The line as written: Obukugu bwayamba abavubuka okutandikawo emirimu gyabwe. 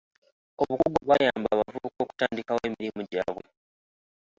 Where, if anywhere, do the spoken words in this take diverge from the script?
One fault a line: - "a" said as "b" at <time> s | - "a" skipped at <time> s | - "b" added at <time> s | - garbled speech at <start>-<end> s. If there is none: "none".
none